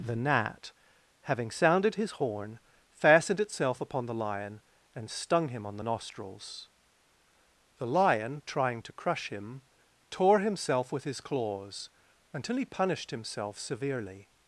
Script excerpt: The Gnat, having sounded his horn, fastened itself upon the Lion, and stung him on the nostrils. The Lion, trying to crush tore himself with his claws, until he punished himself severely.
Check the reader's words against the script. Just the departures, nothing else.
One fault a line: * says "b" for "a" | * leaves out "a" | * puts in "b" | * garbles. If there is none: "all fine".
* puts in "him"